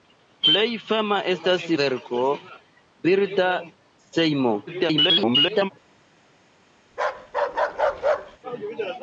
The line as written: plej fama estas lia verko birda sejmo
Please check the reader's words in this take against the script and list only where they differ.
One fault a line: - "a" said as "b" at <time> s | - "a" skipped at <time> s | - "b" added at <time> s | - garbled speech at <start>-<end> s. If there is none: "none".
- "lia" skipped at 1.7 s
- garbled speech at 4.7-5.7 s